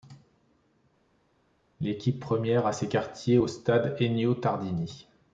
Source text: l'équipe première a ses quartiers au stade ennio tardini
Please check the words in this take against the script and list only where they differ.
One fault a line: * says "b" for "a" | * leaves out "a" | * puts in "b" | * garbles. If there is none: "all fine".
all fine